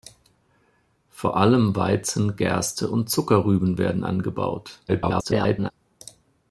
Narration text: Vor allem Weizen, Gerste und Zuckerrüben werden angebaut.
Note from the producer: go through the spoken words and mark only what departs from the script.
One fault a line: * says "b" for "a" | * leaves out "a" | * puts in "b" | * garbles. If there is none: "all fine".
* garbles